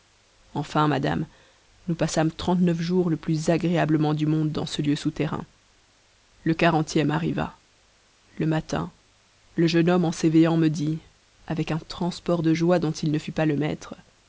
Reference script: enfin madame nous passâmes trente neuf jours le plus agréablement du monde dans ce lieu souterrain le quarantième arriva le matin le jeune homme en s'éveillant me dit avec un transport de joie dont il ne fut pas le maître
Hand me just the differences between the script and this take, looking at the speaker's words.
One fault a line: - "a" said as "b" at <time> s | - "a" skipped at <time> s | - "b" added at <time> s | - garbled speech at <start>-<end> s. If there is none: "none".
none